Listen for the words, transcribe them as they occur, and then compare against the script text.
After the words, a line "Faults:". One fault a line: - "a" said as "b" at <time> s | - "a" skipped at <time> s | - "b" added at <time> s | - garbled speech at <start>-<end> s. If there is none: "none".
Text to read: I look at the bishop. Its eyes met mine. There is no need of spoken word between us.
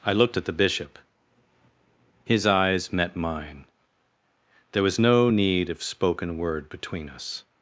I looked at the bishop. His eyes met mine. There was no need of spoken word between us.
Faults:
- "look" said as "looked" at 0.1 s
- "Its" said as "His" at 2.2 s
- "is" said as "was" at 4.8 s